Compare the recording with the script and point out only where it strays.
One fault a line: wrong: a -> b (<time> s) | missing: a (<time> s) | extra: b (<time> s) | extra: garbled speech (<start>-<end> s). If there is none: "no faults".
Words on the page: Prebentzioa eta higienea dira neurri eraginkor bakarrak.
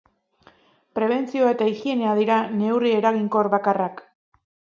no faults